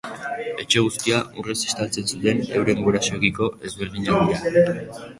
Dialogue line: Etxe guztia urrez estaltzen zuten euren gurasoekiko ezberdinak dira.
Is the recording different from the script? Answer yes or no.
no